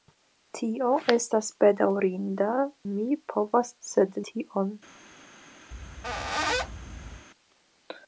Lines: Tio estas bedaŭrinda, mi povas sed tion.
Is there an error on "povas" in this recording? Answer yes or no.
no